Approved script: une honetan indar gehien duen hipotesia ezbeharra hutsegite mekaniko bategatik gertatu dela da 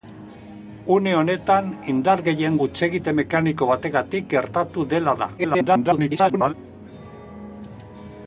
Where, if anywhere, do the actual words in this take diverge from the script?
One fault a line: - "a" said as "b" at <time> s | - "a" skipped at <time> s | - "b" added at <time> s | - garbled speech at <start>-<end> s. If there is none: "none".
- "duen hipotesia ezbeharra" skipped at 2.6 s
- garbled speech at 5.4-6.5 s